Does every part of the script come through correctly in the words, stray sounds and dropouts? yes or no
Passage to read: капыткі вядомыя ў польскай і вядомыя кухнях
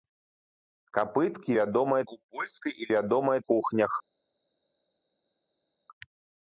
yes